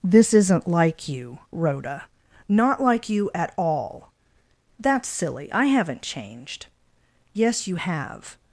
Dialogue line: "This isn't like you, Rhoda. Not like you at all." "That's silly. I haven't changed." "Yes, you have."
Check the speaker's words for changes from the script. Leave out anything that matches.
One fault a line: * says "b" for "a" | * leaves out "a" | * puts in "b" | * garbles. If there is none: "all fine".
all fine